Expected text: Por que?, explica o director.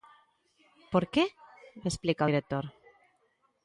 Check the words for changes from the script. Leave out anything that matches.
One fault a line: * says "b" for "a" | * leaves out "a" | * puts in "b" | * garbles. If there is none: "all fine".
all fine